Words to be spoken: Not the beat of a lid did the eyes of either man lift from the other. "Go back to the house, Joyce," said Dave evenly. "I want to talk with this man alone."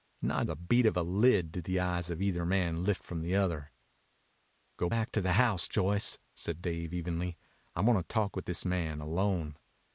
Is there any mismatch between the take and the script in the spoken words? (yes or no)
no